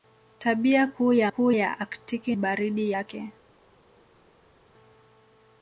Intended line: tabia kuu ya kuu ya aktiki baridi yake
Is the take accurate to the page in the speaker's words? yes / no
yes